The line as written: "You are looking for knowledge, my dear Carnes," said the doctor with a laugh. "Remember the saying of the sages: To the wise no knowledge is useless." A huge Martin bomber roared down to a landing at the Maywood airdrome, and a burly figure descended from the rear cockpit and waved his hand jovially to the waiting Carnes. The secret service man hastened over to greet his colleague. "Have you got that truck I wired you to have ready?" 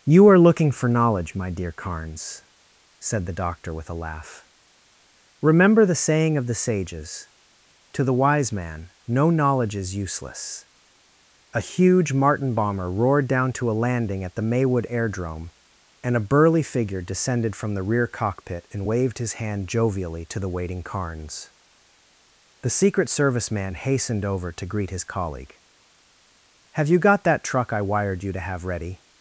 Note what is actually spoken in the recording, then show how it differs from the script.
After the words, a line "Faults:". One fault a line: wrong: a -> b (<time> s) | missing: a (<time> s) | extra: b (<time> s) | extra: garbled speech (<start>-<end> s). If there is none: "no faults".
"You are looking for knowledge, my dear Carnes," said the doctor with a laugh. "Remember the saying of the sages: To the wise man, no knowledge is useless." A huge Martin bomber roared down to a landing at the Maywood airdrome, and a burly figure descended from the rear cockpit and waved his hand jovially to the waiting Carnes. The secret service man hastened over to greet his colleague. "Have you got that truck I wired you to have ready?"
Faults:
extra: man (8.5 s)